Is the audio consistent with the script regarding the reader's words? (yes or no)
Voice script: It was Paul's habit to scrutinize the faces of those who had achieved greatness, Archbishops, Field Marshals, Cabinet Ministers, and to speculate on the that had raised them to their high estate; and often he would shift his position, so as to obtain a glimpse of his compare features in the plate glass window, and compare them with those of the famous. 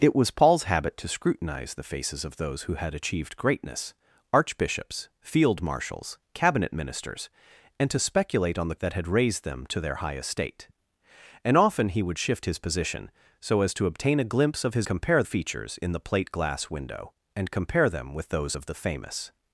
yes